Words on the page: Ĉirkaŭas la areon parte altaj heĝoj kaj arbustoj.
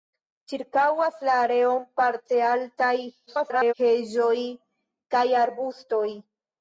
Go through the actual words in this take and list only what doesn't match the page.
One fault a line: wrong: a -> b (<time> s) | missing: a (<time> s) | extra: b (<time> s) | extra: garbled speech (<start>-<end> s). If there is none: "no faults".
extra: garbled speech (3.3-3.7 s)